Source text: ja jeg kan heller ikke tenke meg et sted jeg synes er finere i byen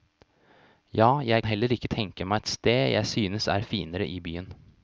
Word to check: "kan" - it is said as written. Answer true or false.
false